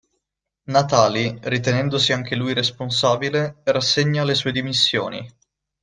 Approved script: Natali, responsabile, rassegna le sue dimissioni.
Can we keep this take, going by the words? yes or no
no